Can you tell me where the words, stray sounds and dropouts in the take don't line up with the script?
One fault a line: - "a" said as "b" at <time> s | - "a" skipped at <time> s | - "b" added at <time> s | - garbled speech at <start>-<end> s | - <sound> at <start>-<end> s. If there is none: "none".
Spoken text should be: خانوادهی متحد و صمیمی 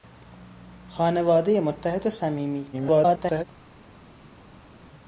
- garbled speech at 2.7-3.4 s